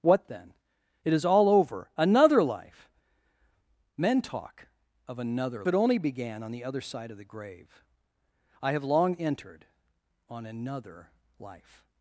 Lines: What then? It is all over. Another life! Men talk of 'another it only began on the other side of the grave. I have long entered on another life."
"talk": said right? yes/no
yes